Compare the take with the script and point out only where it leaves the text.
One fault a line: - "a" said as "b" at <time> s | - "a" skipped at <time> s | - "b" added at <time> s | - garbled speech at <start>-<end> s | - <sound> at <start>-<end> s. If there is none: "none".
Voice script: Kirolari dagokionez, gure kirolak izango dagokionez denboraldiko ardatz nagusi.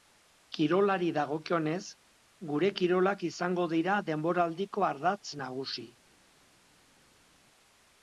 - "dagokionez" said as "dira" at 3.8 s